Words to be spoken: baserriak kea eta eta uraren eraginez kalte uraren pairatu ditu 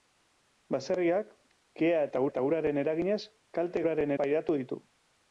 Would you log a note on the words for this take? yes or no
no